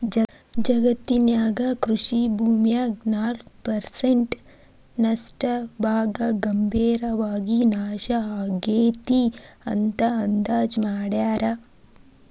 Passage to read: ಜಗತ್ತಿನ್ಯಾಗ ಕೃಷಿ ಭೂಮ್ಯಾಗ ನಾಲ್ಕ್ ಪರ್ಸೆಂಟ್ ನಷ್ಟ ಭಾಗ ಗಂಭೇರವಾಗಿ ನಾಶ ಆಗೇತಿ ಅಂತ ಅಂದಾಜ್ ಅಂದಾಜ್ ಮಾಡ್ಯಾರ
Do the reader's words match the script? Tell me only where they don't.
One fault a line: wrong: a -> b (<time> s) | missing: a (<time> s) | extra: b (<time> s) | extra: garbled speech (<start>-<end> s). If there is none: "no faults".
missing: ಅಂದಾಜ್ (10.8 s)